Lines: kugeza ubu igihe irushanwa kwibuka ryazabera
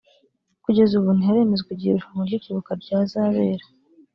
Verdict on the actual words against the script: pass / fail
fail